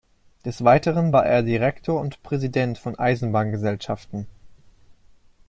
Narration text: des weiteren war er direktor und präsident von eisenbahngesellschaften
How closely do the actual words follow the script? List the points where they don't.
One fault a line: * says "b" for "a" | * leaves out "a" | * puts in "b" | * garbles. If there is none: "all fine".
all fine